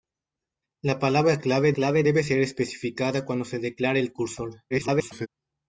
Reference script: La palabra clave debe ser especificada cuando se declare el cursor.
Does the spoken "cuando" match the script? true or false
true